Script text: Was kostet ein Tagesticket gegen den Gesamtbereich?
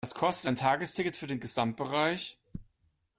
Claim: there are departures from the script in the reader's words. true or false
true